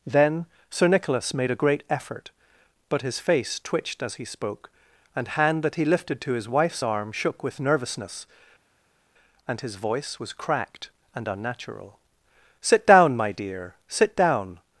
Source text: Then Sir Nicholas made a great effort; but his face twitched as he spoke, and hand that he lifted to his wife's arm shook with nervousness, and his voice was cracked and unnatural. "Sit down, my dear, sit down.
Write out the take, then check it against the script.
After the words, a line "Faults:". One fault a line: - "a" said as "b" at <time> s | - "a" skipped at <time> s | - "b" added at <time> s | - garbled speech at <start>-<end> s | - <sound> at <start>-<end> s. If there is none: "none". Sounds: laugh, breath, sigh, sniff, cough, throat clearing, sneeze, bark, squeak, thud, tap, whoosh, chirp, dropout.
Then Sir Nicholas made a great effort; but his face twitched as he spoke, and hand that he lifted to his wife's arm shook with nervousness, and his voice was cracked and unnatural. "Sit down, my dear, sit down.
Faults:
none